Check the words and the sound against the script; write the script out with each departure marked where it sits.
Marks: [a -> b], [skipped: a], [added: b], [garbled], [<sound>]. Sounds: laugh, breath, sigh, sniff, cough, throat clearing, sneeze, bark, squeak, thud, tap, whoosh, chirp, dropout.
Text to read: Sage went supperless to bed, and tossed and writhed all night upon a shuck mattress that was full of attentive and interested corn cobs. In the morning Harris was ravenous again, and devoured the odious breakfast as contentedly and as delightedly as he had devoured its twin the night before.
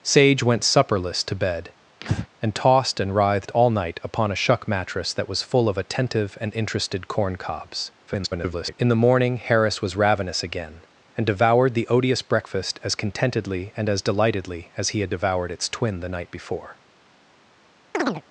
Sage went supperless to bed, [breath] and tossed and writhed all night upon a shuck mattress that was full of attentive and interested corn cobs. [garbled] In the morning Harris was ravenous again, and devoured the odious breakfast as contentedly and as delightedly as he had devoured its twin the night before. [chirp]